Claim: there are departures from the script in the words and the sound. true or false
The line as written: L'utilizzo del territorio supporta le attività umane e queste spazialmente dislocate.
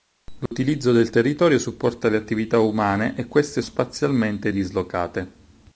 true